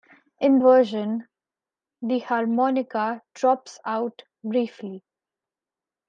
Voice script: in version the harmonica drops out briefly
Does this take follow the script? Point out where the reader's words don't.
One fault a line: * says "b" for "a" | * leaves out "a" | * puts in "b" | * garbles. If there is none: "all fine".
all fine